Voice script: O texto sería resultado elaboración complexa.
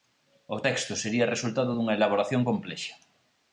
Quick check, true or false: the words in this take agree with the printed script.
false